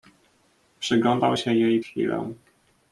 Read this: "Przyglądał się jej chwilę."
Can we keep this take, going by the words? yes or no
yes